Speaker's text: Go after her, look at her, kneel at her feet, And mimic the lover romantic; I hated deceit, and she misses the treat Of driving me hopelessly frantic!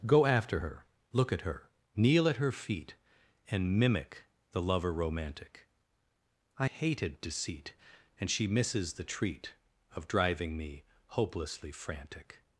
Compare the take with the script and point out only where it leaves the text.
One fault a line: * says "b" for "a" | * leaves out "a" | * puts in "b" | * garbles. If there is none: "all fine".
all fine